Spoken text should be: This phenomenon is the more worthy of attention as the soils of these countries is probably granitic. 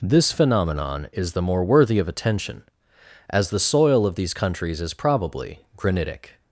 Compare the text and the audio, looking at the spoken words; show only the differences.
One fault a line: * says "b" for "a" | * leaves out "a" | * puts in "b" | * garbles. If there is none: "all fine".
* says "soil" for "soils"